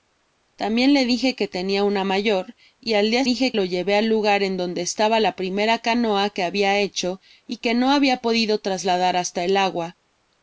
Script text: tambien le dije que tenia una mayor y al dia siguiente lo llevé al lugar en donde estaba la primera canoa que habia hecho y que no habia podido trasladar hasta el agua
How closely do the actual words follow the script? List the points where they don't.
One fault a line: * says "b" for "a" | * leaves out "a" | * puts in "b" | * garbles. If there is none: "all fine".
* says "dije" for "siguiente"